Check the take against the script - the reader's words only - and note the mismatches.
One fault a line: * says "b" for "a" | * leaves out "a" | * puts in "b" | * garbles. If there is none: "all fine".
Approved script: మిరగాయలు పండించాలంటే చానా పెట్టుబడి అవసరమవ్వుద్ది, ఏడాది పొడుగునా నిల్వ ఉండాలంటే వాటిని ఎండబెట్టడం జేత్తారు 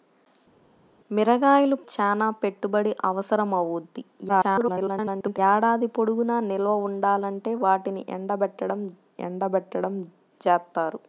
* leaves out "పండించాలంటే"
* garbles
* puts in "ఎండబెట్టడం"